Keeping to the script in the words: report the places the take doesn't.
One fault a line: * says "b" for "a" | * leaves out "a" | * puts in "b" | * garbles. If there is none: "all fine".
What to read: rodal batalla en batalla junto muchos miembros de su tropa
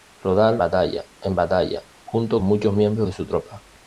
all fine